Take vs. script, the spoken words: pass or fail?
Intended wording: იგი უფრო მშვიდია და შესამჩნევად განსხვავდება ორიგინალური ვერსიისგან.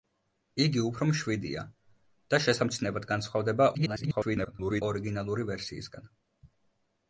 fail